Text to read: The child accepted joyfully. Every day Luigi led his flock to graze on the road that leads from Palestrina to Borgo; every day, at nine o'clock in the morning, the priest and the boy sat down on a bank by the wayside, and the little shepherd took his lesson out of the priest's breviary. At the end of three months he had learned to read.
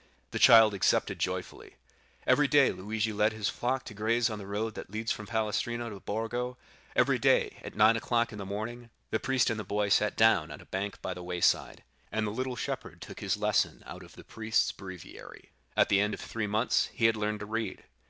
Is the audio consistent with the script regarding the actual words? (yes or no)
yes